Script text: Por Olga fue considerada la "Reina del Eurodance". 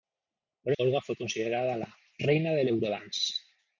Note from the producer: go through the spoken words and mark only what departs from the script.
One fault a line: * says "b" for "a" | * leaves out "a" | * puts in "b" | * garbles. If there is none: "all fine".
all fine